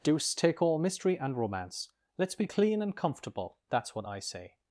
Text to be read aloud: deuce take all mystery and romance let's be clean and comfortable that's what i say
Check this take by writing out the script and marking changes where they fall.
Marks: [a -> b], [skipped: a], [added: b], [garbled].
deuce take all mystery and romance let's be clean and comfortable that's what i say